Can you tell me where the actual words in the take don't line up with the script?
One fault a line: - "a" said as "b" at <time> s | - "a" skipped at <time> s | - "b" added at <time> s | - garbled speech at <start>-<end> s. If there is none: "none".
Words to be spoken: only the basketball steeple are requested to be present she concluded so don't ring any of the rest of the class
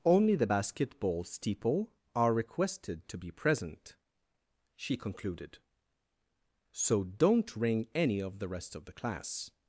none